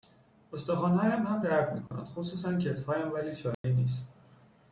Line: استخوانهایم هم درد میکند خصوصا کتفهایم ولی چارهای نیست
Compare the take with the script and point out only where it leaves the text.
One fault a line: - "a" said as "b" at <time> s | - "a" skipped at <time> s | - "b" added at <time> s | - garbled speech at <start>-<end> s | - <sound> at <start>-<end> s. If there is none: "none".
- dropout at 1.9-1.9 s
- dropout at 3.5-3.6 s